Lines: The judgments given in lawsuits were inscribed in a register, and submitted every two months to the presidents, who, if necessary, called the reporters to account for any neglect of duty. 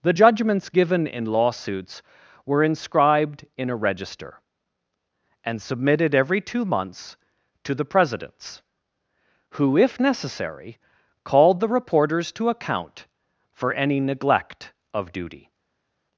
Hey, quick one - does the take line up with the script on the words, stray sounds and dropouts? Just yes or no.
yes